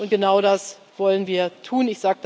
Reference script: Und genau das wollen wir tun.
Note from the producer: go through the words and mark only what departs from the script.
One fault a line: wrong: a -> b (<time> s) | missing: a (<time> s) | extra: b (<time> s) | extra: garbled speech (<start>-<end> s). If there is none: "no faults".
no faults